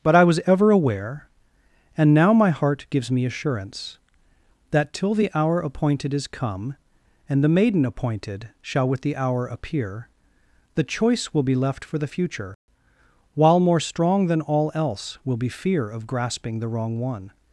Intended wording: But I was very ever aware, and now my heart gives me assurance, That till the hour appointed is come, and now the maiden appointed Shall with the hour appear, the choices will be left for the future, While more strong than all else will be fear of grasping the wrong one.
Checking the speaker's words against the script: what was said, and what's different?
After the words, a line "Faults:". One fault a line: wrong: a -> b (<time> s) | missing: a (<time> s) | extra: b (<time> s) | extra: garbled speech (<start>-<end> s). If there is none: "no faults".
But I was ever aware, and now my heart gives me assurance, That till the hour appointed is come, and the maiden appointed Shall with the hour appear, the choice will be left for the future, While more strong than all else will be fear of grasping the wrong one.
Faults:
missing: very (0.4 s)
missing: now (7.4 s)
wrong: choices -> choice (10.8 s)